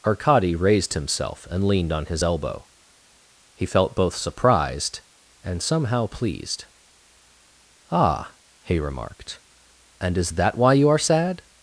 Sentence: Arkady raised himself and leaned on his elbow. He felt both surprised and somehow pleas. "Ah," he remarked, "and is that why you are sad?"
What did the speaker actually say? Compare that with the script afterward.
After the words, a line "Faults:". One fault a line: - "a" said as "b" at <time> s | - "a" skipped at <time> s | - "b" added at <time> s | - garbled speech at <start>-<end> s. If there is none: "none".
Arkady raised himself and leaned on his elbow. He felt both surprised and somehow pleased. "Ah," he remarked, "and is that why you are sad?"
Faults:
- "pleas" said as "pleased" at 6.1 s